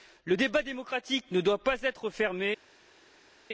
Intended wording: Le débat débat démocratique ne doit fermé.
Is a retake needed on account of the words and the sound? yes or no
yes